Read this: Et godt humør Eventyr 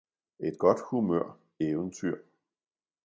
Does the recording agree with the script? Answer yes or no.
yes